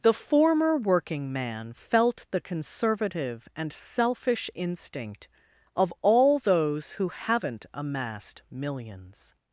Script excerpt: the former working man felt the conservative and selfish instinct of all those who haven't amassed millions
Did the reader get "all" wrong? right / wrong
right